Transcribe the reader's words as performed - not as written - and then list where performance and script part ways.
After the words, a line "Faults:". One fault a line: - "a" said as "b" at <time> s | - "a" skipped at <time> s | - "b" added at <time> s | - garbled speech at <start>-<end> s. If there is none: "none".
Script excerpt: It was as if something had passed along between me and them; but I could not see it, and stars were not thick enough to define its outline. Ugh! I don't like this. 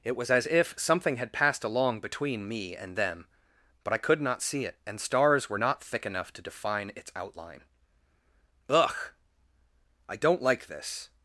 It was as if something had passed along between me and them; but I could not see it, and stars were not thick enough to define its outline. Ugh! I don't like this.
Faults:
none